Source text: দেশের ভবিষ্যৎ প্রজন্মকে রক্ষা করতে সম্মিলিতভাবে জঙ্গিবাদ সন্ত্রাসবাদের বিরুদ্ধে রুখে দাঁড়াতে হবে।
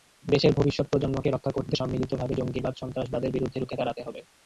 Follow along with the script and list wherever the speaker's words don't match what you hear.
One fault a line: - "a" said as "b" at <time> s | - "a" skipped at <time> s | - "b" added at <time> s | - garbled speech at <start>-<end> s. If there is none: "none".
none